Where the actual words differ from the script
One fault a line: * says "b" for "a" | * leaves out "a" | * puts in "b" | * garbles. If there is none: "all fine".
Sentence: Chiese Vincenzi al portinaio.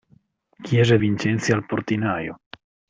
all fine